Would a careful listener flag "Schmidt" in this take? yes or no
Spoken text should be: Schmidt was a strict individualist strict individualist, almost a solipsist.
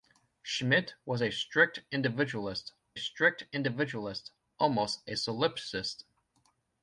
no